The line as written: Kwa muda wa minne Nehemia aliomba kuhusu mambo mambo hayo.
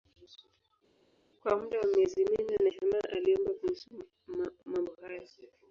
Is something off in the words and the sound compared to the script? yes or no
yes